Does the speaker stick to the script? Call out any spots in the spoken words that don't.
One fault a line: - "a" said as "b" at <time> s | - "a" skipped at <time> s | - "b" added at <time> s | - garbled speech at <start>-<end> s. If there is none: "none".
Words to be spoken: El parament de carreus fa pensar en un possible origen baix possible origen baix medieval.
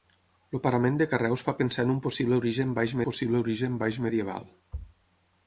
none